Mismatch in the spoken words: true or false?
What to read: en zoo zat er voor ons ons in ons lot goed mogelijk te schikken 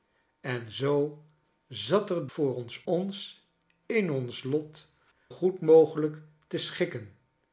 false